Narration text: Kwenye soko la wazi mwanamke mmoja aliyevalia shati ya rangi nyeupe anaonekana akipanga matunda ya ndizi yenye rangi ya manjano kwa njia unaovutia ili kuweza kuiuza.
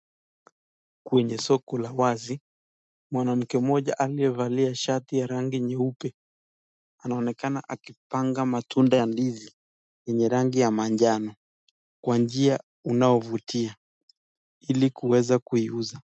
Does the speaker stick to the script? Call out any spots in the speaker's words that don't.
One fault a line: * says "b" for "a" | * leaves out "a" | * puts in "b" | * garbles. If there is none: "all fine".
all fine